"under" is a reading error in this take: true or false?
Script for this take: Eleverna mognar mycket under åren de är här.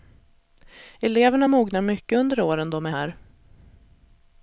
false